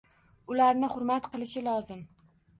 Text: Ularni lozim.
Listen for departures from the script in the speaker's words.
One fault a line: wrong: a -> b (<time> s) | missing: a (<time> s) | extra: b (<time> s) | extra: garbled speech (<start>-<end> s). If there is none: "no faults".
extra: hurmat qilishi (0.9 s)